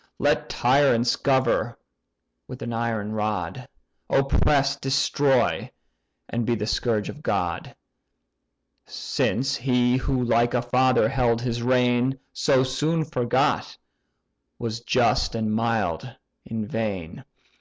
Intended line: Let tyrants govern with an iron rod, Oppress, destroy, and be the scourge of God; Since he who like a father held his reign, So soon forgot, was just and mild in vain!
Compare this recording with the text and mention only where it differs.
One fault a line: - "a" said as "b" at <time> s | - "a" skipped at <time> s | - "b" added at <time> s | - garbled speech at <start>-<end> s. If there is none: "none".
none